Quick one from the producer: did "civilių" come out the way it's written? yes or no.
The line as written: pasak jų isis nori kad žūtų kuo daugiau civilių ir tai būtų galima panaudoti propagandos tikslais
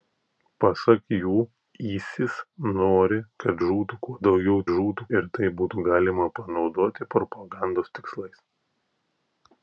no